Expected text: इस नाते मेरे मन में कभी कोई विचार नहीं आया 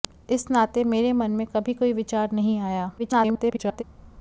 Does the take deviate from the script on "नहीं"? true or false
false